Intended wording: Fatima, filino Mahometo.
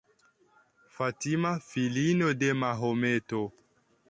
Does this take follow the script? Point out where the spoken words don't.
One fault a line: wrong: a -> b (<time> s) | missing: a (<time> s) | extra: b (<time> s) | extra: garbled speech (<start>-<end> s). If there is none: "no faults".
extra: de (2.3 s)